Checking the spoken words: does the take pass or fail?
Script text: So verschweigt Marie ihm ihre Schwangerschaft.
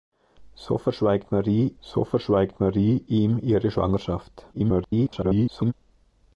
fail